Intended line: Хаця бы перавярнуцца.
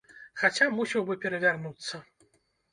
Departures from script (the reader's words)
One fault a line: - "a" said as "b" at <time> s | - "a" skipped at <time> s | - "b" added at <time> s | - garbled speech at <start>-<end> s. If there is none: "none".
- "мусіў" added at 0.8 s